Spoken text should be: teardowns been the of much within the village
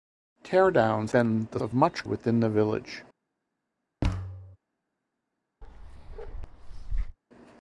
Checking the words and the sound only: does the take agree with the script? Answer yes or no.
no